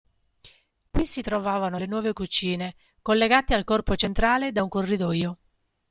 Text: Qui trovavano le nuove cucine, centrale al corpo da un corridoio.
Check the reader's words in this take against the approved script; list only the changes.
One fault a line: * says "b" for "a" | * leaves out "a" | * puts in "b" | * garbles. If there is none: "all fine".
* puts in "si"
* says "collegate" for "centrale"
* puts in "centrale"